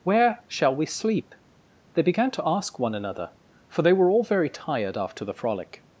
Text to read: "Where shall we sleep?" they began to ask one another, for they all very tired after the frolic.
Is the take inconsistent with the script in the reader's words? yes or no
yes